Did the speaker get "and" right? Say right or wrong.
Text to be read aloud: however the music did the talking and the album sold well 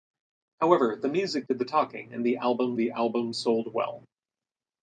right